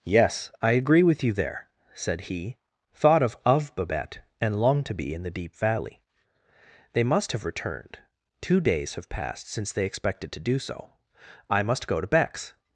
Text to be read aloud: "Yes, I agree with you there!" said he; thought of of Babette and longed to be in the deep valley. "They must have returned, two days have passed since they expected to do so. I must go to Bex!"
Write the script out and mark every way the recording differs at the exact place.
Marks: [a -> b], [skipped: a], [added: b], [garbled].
"Yes, I agree with you there!" said he; thought of of Babette and longed to be in the deep valley. "They must have returned, two days have passed since they expected to do so. I must go to Bex!"